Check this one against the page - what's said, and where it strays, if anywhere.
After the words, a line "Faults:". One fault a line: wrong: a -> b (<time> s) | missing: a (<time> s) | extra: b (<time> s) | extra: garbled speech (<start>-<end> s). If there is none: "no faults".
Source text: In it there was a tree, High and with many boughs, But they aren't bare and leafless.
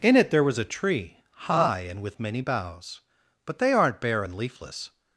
In it there was a tree, High and with many boughs, But they aren't bare and leafless.
Faults:
no faults